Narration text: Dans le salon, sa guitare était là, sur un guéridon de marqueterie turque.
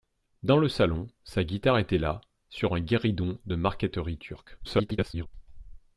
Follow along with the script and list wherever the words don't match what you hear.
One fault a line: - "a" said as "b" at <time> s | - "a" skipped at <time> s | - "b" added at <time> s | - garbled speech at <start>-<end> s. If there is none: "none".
- garbled speech at 4.6-5.3 s